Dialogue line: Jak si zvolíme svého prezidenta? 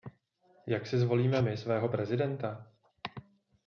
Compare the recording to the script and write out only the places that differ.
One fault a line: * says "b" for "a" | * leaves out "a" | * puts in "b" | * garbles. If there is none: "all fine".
* puts in "my"